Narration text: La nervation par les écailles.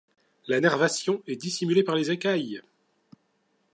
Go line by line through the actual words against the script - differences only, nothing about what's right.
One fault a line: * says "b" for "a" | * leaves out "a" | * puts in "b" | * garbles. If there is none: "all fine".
* puts in "est dissimulée"